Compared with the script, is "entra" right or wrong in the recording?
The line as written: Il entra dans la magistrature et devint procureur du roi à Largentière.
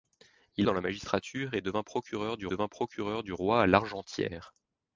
wrong